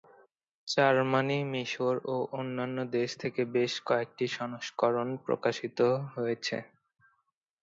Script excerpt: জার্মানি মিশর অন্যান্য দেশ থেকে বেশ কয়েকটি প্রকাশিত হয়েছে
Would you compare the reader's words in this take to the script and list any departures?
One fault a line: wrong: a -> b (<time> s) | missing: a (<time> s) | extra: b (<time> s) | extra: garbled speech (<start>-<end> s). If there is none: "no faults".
extra: ও (2.1 s)
extra: সংস্করণ (4.4 s)